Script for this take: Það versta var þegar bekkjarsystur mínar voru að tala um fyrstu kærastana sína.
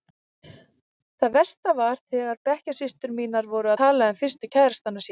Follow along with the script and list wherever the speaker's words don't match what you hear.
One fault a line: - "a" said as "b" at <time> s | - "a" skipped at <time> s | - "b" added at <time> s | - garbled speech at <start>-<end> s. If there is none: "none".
- "að" skipped at 3.7 s